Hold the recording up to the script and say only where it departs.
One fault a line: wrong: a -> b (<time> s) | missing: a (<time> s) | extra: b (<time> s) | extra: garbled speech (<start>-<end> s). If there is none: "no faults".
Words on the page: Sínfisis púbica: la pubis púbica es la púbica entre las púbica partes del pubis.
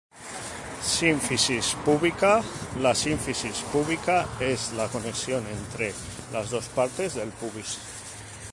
wrong: pubis -> sínfisis (3.0 s)
wrong: púbica -> conexión (4.9 s)
wrong: púbica -> dos (6.5 s)